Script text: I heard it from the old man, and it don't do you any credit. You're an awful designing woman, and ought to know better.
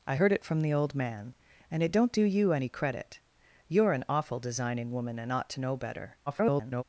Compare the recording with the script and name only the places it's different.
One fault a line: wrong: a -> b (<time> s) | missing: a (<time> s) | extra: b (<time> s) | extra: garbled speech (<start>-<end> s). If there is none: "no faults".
extra: garbled speech (6.3-6.8 s)